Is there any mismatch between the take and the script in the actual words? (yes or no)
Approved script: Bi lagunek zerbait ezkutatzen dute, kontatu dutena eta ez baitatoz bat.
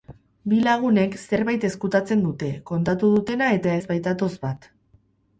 no